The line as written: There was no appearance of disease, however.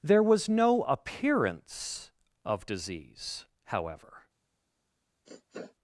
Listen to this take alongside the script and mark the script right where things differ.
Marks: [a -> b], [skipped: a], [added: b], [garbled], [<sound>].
There was no appearance of disease, however. [sniff]